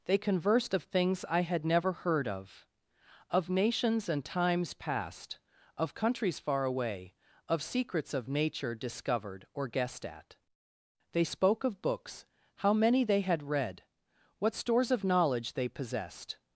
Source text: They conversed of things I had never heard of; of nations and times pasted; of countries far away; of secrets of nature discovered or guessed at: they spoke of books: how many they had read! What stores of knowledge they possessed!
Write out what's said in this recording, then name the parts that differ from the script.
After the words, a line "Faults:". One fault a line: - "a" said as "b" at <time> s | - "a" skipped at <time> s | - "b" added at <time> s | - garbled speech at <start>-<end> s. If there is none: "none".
They conversed of things I had never heard of; of nations and times past; of countries far away; of secrets of nature discovered or guessed at: they spoke of books: how many they had read! What stores of knowledge they possessed!
Faults:
- "pasted" said as "past" at 4.7 s